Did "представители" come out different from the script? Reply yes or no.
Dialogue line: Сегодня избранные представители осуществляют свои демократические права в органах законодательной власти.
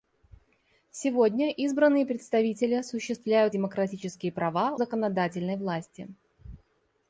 no